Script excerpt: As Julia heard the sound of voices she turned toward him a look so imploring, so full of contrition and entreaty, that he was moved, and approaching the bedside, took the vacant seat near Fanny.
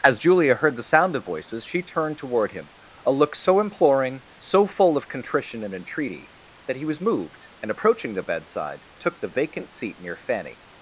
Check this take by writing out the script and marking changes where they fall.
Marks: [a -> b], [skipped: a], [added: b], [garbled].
As Julia heard the sound of voices she turned toward him a look so imploring, so full of contrition and entreaty, that he was moved, and approaching the bedside, took the vacant seat near Fanny.